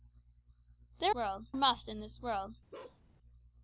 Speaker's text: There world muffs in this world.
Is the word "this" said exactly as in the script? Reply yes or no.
yes